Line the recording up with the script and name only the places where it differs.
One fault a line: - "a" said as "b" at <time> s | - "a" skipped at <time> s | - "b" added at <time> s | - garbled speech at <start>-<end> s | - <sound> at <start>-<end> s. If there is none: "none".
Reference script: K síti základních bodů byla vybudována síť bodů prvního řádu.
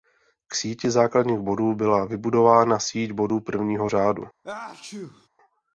- sneeze at 4.4-5.3 s